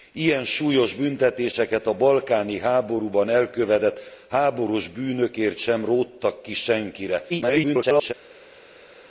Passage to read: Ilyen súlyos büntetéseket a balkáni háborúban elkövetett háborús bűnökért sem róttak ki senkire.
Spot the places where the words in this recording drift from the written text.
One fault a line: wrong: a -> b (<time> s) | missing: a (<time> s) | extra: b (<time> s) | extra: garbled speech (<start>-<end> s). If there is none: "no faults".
extra: garbled speech (7.3-8.1 s)